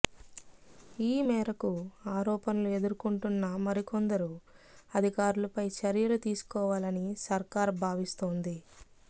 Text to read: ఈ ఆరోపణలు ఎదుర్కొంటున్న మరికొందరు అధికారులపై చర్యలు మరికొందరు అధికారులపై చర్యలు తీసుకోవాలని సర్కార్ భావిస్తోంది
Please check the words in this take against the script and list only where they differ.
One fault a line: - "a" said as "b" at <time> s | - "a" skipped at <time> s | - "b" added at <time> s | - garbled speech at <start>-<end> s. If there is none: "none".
- "మేరకు" added at 1.3 s
- "మరికొందరు అధికారులపై చర్యలు" skipped at 6.2 s